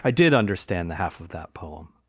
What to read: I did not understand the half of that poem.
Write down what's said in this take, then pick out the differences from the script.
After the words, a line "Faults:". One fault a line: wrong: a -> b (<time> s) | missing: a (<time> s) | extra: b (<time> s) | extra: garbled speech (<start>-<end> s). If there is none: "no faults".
I did understand the half of that poem.
Faults:
missing: not (0.3 s)